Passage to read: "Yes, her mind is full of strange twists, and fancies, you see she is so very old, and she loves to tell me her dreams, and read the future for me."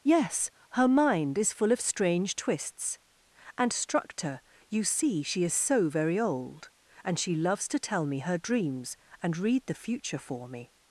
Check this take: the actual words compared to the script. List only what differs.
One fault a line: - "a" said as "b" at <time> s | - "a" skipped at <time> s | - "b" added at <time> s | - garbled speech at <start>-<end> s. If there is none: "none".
- "fancies" said as "structor" at 3.7 s